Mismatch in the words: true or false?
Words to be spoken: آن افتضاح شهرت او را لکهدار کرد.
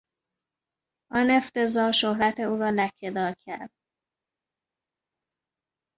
false